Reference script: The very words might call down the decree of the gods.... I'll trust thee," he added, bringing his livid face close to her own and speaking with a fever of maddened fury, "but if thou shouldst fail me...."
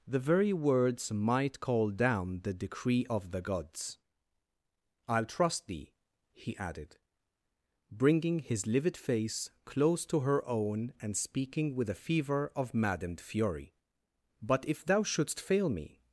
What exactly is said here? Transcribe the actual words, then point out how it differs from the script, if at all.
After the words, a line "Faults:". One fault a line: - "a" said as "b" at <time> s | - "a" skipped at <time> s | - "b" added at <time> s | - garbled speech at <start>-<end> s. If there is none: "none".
The very words might call down the decree of the gods.... I'll trust thee," he added, bringing his livid face close to her own and speaking with a fever of maddened fury, "but if thou shouldst fail me...."
Faults:
none